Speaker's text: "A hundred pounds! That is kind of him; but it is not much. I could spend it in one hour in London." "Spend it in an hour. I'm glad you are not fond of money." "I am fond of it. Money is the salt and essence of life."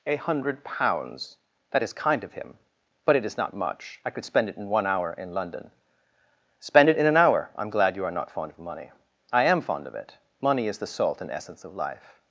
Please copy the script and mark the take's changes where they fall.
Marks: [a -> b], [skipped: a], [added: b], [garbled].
"A hundred pounds! That is kind of him; but it is not much. I could spend it in one hour in London." "Spend it in an hour. I'm glad you are not fond of money." "I am fond of it. Money is the salt and essence of life."